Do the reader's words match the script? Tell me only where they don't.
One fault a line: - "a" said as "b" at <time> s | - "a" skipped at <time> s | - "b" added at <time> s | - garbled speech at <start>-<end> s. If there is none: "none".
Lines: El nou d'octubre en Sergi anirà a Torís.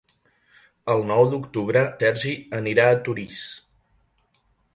- "en" skipped at 1.8 s